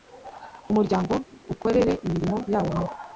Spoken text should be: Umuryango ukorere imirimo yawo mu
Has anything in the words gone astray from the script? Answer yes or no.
no